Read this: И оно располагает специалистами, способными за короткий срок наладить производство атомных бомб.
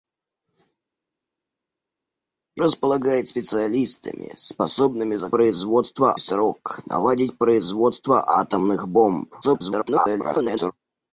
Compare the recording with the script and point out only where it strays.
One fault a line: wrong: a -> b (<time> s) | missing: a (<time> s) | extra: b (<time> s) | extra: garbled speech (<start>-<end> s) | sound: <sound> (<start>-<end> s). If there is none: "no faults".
missing: оно (2.6 s)
wrong: короткий -> производство (5.3 s)
extra: garbled speech (9.4-10.7 s)